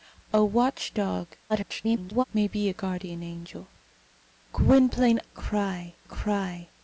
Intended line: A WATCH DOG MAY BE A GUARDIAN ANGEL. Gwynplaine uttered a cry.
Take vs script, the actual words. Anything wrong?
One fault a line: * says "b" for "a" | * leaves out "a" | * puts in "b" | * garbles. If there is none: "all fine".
* garbles
* says "cry" for "uttered"